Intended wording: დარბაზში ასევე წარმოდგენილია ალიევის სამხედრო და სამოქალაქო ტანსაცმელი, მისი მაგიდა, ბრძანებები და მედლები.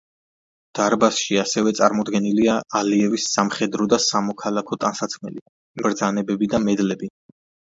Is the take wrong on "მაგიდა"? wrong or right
wrong